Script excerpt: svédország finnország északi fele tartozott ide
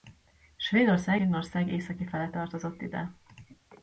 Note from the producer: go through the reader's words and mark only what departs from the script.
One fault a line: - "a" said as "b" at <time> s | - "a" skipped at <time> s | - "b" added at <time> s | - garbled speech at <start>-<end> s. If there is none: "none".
none